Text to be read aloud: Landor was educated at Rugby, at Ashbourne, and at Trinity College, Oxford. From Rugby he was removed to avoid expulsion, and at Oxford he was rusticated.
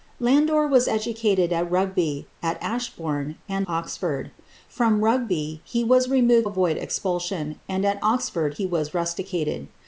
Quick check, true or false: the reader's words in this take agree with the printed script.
false